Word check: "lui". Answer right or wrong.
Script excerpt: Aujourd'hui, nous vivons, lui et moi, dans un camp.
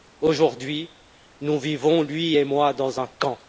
right